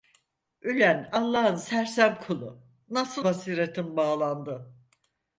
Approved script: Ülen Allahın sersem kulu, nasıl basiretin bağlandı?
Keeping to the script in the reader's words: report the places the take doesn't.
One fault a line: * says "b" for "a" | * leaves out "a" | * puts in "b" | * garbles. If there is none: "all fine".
all fine